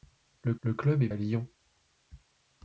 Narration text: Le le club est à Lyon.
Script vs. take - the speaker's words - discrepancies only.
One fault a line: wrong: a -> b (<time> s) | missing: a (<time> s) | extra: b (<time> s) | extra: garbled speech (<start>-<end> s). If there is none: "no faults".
no faults